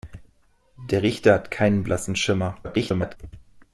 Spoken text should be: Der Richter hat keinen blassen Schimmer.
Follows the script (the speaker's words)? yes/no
no